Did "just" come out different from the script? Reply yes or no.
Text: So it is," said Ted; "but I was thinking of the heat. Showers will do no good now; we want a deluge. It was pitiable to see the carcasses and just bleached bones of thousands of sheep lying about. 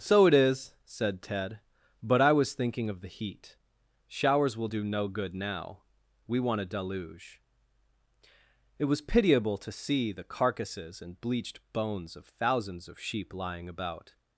yes